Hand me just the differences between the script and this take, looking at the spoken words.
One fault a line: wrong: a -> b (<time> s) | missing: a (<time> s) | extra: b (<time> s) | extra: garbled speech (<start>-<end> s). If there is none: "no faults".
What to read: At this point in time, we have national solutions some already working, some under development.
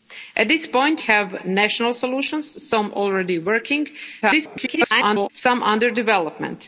missing: in time we (1.0 s)
extra: garbled speech (4.2-5.3 s)